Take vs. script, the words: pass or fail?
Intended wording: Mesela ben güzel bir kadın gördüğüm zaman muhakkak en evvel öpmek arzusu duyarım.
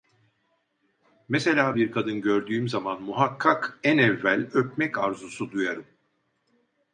fail